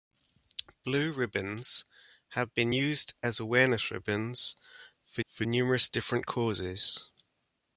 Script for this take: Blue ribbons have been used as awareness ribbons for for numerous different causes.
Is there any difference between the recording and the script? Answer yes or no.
no